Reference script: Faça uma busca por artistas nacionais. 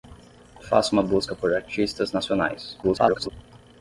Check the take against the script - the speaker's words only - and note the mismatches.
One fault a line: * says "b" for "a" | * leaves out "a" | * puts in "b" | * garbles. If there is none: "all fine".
* garbles